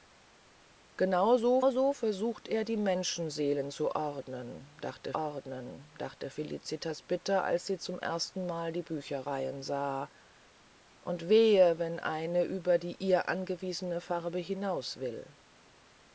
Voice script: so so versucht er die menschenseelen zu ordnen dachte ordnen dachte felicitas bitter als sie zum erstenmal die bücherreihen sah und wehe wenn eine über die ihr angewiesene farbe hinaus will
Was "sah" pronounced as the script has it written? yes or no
yes